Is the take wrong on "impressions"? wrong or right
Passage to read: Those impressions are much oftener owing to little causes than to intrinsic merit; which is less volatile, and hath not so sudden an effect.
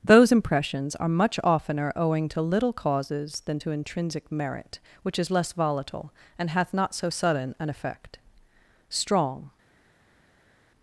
right